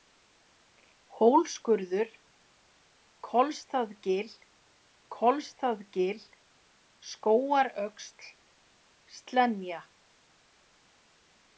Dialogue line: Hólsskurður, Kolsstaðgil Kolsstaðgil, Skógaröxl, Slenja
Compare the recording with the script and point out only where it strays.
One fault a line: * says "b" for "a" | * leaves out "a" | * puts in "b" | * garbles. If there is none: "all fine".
all fine